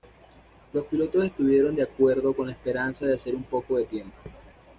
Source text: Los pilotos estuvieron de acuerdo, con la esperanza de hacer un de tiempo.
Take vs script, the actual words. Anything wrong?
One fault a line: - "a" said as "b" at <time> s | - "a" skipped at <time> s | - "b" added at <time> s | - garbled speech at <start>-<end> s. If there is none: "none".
- "poco" added at 3.4 s